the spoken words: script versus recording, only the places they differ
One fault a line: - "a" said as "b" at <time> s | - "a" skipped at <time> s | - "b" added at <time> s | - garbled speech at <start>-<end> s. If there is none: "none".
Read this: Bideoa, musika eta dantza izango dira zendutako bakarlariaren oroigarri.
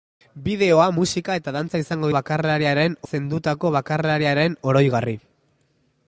- "dira" said as "bakarlariaren" at 2.2 s